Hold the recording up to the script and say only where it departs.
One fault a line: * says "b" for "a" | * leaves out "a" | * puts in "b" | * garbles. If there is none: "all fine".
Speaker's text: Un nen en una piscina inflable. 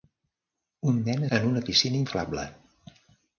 all fine